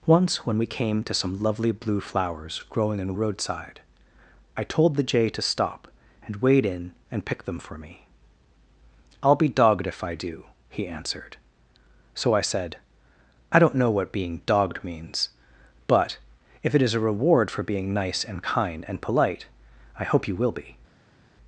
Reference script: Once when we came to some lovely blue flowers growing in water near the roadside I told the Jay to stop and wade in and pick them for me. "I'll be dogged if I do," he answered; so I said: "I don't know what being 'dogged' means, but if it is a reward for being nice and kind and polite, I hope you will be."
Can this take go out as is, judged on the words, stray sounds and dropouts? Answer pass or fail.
fail